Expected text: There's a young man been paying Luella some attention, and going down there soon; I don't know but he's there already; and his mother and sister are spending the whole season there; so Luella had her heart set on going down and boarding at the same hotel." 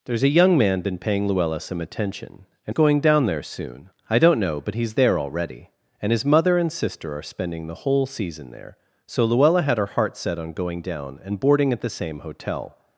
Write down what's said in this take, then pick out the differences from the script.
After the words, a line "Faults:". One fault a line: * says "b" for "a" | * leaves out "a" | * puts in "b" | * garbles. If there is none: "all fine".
There's a young man been paying Luella some attention, and going down there soon; I don't know but he's there already; and his mother and sister are spending the whole season there; so Luella had her heart set on going down and boarding at the same hotel."
Faults:
all fine